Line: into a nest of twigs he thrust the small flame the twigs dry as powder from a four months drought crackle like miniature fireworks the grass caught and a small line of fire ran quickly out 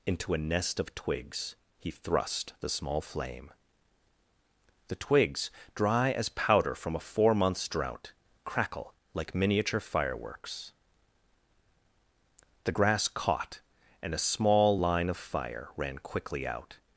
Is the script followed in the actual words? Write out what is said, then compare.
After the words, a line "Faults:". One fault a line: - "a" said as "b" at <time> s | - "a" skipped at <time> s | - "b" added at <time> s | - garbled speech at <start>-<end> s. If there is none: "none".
into a nest of twigs he thrust the small flame the twigs dry as powder from a four months drought crackle like miniature fireworks the grass caught and a small line of fire ran quickly out
Faults:
none